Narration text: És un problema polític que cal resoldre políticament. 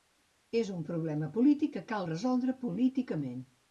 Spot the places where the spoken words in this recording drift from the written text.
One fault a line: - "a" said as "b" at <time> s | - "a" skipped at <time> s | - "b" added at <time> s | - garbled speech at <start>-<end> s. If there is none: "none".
none